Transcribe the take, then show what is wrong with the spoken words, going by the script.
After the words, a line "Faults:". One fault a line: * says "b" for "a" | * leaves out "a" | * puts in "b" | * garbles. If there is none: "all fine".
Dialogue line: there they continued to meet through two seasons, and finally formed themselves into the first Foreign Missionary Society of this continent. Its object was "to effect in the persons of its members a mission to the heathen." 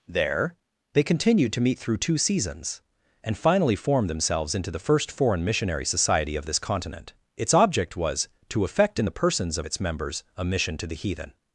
there they continued to meet through two seasons, and finally formed themselves into the first Foreign Missionary Society of this continent. Its object was "to effect in the persons of its members a mission to the heathen."
Faults:
all fine